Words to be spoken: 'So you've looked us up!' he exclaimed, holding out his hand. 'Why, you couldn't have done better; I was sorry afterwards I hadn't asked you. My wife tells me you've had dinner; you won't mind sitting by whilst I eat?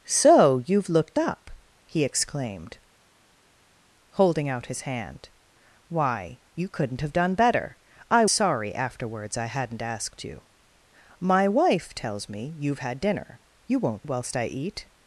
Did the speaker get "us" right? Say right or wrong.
wrong